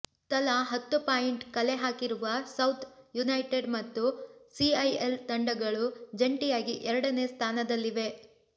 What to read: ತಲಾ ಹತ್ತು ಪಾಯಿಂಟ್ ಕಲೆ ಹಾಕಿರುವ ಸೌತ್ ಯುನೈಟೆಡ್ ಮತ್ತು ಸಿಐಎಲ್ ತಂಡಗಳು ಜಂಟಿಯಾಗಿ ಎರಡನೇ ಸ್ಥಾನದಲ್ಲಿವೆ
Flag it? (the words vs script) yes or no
no